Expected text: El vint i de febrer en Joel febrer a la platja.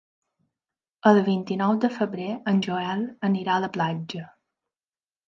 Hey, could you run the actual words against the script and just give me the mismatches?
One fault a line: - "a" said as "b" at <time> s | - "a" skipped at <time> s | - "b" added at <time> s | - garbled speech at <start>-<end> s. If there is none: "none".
- "nou" added at 1.6 s
- "febrer" said as "anirà" at 3.3 s